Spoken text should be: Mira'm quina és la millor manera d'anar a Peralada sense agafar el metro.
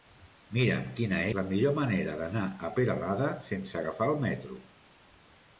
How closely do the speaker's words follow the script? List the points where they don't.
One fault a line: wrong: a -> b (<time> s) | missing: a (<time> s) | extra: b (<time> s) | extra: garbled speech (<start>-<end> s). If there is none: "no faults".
missing: és (1.2 s)